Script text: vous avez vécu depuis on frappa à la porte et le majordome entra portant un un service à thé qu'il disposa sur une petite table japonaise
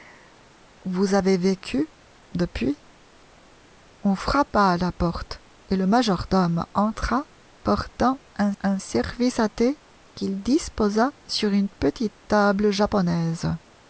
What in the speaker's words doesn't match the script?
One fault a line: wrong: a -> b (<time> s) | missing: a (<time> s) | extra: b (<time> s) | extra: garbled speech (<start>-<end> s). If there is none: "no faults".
no faults